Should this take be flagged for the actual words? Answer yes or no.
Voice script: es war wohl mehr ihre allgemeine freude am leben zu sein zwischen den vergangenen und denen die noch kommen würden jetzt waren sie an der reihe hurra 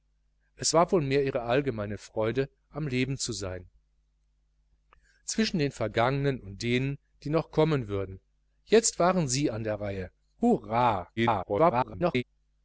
yes